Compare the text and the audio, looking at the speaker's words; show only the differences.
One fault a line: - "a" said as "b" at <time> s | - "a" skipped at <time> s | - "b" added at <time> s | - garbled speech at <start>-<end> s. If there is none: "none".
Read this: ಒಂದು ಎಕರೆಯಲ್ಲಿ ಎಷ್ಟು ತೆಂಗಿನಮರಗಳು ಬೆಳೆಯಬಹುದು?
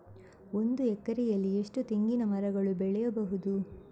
none